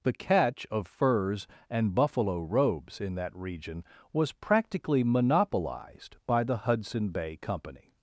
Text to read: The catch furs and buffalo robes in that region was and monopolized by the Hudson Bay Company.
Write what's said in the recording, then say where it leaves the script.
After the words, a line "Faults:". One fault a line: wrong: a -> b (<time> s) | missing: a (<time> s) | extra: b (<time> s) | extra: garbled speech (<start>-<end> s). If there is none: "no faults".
The catch of furs and buffalo robes in that region was practically monopolized by the Hudson Bay Company.
Faults:
extra: of (0.7 s)
wrong: and -> practically (4.3 s)